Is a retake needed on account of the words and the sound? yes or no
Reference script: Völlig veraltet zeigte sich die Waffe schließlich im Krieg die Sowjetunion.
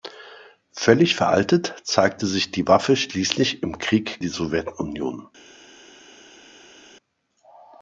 no